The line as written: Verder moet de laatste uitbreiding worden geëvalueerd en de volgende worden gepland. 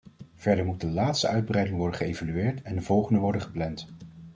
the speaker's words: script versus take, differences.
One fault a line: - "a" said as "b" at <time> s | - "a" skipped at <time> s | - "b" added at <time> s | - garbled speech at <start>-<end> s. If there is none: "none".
none